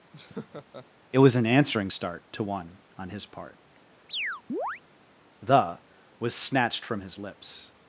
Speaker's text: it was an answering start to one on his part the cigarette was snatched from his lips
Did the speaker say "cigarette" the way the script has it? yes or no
no